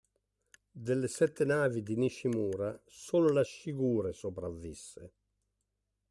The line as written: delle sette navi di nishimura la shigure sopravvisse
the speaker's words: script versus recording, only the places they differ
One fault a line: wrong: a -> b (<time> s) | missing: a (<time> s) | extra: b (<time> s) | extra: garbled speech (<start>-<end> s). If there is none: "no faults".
extra: solo (2.9 s)